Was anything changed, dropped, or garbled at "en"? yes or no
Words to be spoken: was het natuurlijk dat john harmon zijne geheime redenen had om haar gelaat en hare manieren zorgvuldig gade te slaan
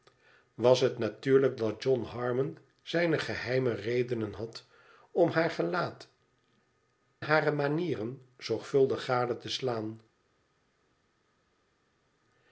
yes